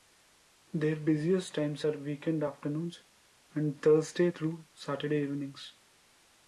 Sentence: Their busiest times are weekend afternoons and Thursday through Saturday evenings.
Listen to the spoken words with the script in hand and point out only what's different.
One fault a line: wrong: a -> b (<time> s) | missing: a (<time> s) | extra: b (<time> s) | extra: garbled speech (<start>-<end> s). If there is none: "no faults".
no faults